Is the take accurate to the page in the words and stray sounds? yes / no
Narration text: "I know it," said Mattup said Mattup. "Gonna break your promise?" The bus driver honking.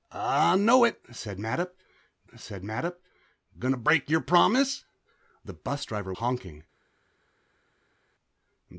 yes